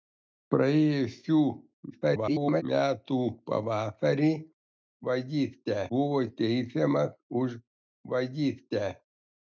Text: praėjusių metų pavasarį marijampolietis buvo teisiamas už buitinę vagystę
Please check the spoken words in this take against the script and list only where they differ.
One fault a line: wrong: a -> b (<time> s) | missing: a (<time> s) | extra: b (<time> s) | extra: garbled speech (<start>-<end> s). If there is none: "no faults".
extra: garbled speech (1.9-2.6 s)
wrong: marijampolietis -> vagystę (5.1 s)
missing: buitinę (7.6 s)